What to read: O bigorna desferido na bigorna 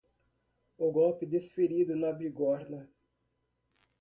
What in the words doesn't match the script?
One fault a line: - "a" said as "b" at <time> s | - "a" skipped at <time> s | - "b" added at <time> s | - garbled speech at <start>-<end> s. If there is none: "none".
- "bigorna" said as "golpe" at 0.9 s